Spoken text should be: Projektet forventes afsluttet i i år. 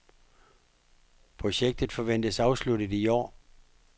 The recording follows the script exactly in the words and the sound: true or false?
false